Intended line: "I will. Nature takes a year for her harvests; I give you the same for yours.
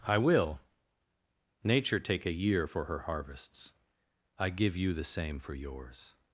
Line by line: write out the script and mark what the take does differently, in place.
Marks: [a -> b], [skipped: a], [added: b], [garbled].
"I will. Nature [takes -> take] a year for her harvests; I give you the same for yours.